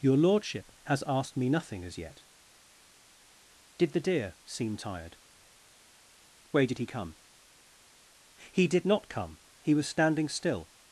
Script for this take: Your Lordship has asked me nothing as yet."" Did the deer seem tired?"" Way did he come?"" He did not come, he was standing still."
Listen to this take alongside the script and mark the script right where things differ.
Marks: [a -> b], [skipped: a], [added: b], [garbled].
Your Lordship has asked me nothing as yet."" Did the deer seem tired?"" Way did he come?"" He did not come, he was standing still."